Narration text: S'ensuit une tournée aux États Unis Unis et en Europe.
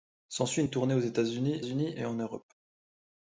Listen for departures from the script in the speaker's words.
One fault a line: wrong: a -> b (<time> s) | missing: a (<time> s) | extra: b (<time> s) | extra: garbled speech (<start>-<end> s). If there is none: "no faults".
no faults